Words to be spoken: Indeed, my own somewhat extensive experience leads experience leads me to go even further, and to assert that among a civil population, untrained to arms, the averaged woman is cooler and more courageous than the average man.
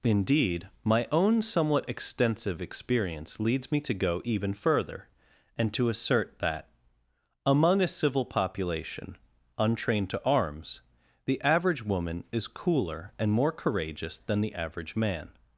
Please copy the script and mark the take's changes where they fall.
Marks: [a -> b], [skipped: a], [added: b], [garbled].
Indeed, my own somewhat extensive experience leads [skipped: experience leads] me to go even further, and to assert that among a civil population, untrained to arms, the [averaged -> average] woman is cooler and more courageous than the average man.